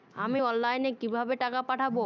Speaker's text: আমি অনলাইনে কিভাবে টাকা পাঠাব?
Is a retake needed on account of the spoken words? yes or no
no